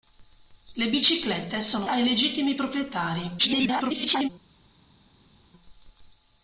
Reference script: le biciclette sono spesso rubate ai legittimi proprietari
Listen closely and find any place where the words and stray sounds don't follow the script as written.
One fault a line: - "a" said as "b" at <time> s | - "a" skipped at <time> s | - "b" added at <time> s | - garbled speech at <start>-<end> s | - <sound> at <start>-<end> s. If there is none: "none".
- "spesso rubate" skipped at 1.9 s
- garbled speech at 3.4-4.3 s